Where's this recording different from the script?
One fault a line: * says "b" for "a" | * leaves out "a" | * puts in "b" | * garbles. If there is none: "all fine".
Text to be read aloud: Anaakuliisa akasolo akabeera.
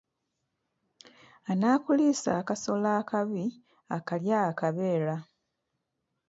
* puts in "akabi akalya"